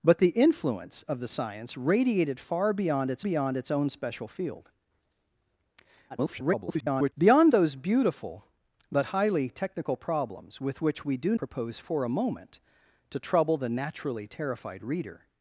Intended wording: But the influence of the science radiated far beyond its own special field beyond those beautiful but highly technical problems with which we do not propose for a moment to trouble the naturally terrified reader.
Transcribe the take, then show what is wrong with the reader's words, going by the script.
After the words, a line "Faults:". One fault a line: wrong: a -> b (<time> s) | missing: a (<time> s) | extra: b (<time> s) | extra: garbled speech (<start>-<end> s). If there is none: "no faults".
But the influence of the science radiated far beyond its beyond its own special field [garbled] beyond those beautiful but highly technical problems with which we do propose for a moment to trouble the naturally terrified reader.
Faults:
extra: beyond its (3.2 s)
extra: garbled speech (6.1-7.1 s)
missing: not (11.3 s)